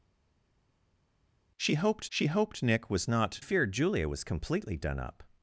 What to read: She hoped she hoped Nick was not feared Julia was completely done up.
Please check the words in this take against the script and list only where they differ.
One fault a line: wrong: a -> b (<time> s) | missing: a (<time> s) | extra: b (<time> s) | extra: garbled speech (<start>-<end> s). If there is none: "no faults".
no faults